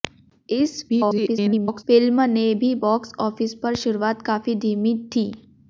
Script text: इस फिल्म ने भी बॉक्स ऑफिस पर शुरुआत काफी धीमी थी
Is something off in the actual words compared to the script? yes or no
yes